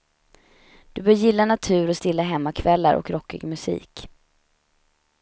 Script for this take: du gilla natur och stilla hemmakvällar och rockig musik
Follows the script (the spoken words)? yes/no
no